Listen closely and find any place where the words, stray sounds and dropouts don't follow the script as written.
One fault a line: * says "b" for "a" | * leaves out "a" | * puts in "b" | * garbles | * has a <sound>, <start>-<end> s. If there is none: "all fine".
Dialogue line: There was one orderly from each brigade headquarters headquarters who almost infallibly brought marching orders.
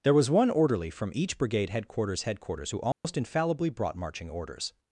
* has a dropout, 2.9-3.0 s